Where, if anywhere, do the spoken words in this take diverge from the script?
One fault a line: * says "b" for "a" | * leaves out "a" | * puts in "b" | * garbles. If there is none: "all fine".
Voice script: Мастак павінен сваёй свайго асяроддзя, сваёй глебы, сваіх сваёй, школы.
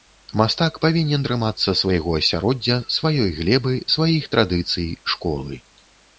* says "трымацца" for "сваёй"
* says "традыцый" for "сваёй"